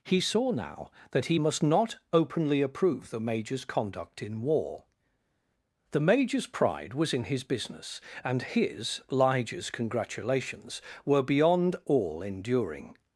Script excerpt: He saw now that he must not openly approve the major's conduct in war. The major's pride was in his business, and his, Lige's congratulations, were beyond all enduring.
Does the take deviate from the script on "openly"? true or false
false